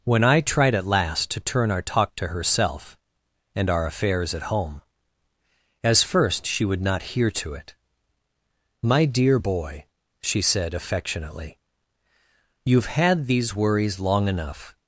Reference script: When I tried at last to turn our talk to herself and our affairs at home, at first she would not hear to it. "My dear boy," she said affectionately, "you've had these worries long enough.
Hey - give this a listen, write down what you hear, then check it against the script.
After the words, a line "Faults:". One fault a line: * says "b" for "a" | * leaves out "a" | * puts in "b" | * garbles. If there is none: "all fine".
When I tried at last to turn our talk to herself and our affairs at home, as first she would not hear to it. "My dear boy," she said affectionately, "you've had these worries long enough.
Faults:
* says "as" for "at"